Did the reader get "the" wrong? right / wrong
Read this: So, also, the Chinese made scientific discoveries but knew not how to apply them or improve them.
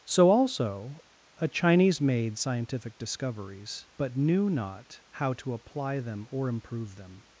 wrong